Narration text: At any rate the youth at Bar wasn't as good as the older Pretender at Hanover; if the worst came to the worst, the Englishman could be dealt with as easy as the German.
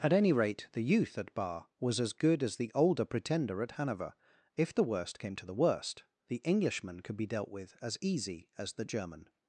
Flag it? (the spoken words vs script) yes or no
yes